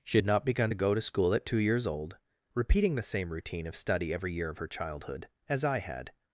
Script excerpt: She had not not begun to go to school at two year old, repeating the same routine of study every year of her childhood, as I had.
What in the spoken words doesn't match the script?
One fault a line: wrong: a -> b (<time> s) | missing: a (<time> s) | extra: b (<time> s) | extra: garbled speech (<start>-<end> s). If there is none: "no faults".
missing: not (0.5 s)
wrong: year -> years (1.6 s)